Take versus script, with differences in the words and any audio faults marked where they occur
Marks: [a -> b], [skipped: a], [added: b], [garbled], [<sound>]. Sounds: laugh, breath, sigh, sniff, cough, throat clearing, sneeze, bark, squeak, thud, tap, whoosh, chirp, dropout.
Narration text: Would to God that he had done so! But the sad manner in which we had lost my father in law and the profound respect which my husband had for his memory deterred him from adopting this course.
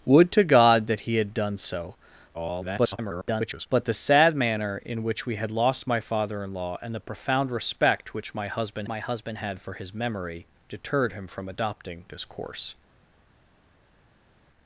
Would to God that he had done so! [garbled] But the sad manner in which we had lost my father in law and the profound respect which my husband [added: my husband] had for his memory deterred him from adopting this course.